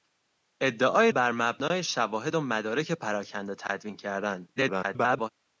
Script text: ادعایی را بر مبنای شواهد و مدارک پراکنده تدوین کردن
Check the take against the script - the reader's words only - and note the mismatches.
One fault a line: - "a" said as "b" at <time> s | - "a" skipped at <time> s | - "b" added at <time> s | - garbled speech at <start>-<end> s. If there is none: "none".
- "را" skipped at 1.1 s
- garbled speech at 4.6-5.3 s